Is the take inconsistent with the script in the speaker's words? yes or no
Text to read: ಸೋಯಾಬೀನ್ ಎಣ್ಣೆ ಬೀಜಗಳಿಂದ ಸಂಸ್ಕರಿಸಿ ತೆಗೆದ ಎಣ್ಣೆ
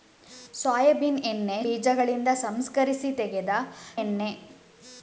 no